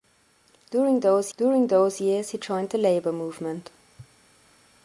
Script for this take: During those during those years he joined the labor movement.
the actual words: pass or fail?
pass